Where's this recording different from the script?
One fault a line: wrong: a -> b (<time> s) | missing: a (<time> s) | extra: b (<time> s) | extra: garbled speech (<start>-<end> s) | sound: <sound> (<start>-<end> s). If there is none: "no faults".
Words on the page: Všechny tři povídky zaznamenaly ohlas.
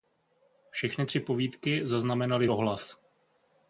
no faults